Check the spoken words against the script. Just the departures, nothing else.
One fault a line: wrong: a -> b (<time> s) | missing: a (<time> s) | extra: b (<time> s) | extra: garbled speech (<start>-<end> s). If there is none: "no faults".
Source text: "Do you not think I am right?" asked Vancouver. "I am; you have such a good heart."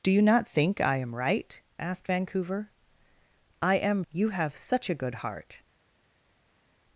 no faults